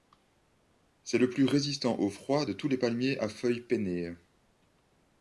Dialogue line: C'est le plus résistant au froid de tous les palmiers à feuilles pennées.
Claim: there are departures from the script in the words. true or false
false